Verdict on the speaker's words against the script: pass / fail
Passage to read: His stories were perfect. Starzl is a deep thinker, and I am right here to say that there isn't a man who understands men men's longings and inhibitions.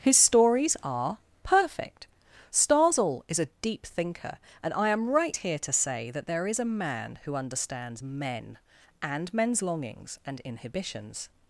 fail